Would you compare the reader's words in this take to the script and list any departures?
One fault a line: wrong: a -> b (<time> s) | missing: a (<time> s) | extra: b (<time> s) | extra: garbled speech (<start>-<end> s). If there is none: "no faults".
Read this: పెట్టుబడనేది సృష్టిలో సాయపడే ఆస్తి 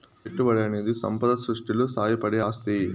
extra: సంపద (0.9 s)